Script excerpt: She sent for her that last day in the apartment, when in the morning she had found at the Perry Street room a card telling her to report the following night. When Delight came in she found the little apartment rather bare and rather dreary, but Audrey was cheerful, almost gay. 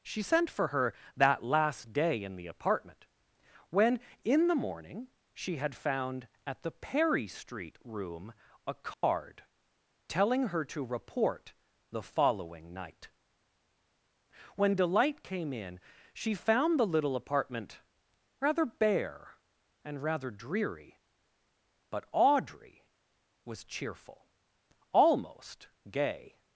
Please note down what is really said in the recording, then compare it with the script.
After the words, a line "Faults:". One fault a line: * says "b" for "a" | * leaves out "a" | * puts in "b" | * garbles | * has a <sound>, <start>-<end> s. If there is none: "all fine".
She sent for her that last day in the apartment, when in the morning she had found at the Perry Street room a card telling her to report the following night. When Delight came in she found the little apartment rather bare and rather dreary, but Audrey was cheerful, almost gay.
Faults:
* has a dropout, 8.9-9.0 s